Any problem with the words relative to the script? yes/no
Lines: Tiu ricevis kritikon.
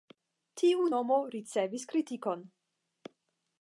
yes